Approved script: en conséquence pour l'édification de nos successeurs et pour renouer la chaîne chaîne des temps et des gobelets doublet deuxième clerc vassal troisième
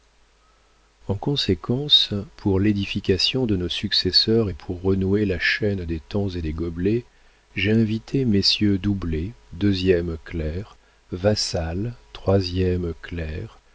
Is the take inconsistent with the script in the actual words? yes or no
yes